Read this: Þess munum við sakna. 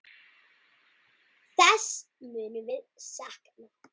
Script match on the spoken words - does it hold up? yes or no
yes